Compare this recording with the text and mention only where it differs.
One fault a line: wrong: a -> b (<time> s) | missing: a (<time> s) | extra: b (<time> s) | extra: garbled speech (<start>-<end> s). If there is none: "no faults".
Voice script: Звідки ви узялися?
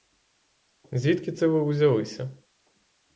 extra: це (1.3 s)